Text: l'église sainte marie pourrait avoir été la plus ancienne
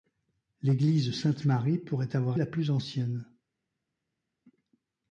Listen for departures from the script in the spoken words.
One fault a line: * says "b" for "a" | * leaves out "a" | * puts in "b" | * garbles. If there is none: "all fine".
* leaves out "été"